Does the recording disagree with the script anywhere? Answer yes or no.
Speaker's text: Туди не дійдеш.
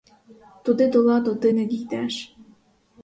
yes